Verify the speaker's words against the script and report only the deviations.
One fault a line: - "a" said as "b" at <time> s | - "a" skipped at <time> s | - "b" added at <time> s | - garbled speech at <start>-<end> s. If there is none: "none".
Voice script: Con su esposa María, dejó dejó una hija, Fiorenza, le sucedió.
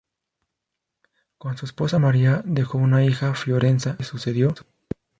- "dejó" skipped at 2.8 s
- "que" added at 3.9 s